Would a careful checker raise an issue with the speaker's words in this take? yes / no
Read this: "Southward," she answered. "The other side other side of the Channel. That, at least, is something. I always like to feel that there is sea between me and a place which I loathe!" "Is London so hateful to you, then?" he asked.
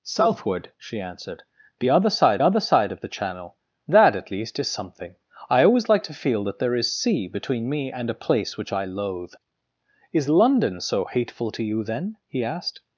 no